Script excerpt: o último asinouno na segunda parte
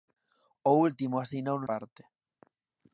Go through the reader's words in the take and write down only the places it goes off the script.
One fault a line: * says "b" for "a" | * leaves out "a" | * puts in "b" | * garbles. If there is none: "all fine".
* leaves out "na segunda"